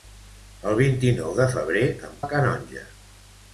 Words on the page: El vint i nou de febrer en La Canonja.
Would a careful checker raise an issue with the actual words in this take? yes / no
no